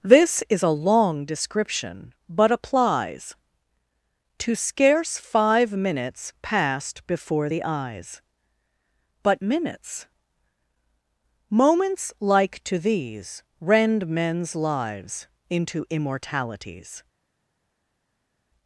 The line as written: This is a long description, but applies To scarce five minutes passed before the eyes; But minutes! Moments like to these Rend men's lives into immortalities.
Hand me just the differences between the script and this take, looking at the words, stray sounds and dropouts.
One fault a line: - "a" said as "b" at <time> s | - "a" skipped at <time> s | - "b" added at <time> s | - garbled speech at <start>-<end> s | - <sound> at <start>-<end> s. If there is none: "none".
none